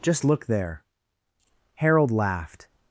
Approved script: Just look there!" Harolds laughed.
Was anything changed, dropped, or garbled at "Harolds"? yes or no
yes